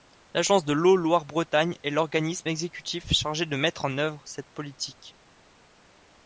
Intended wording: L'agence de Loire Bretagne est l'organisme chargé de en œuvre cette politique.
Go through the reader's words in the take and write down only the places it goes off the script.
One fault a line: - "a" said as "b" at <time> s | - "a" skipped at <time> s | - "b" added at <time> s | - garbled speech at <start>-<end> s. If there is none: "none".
- "l'eau" added at 0.7 s
- "exécutif" added at 2.5 s
- "mettre" added at 3.6 s